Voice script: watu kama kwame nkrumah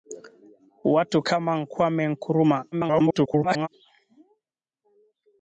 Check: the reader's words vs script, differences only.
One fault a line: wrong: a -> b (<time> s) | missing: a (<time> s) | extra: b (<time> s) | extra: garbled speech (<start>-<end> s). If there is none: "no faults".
extra: garbled speech (2.7-3.7 s)